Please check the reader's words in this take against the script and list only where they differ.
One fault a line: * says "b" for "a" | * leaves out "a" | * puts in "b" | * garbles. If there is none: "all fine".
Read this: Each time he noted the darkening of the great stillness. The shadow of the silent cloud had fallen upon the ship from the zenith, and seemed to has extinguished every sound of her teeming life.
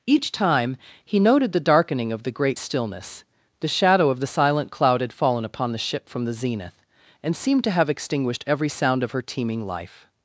* says "have" for "has"